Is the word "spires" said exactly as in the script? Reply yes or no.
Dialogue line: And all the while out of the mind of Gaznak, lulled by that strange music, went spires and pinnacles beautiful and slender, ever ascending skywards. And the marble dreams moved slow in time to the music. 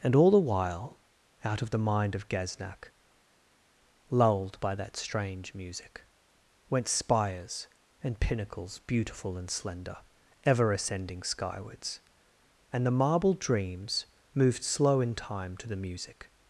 yes